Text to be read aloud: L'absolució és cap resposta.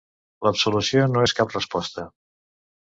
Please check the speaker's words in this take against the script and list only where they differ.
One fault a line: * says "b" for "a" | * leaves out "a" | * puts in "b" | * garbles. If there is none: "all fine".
* puts in "no"